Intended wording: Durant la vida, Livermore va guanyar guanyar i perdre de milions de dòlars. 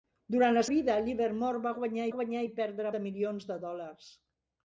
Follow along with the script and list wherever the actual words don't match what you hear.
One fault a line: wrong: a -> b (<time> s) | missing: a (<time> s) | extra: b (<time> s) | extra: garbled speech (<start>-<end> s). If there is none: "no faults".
no faults